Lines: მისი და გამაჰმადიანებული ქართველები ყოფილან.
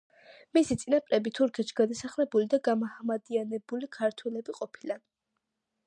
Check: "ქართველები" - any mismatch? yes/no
no